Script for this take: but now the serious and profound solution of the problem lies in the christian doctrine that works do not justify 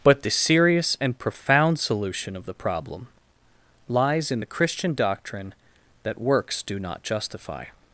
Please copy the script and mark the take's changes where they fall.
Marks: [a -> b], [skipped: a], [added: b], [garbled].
but [skipped: now] the serious and profound solution of the problem lies in the christian doctrine that works do not justify